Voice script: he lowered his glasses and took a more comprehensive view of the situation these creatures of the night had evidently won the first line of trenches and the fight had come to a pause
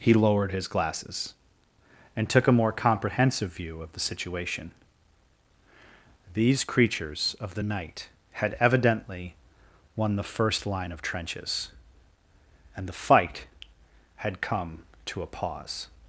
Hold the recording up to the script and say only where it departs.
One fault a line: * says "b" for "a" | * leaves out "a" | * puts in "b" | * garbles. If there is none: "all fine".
all fine